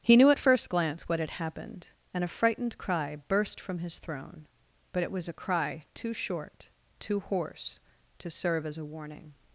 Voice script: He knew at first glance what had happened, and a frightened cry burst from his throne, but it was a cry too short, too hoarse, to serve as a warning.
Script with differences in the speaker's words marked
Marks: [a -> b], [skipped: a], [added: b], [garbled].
He knew at first glance what had happened, and a frightened cry burst from his throne, but it was a cry too short, too hoarse, to serve as a warning.